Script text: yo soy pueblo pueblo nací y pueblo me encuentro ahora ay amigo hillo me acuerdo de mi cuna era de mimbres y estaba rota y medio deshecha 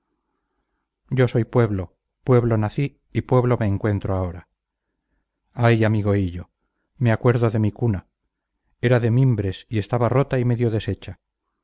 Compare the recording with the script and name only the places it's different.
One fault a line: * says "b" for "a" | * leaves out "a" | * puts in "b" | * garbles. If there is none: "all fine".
all fine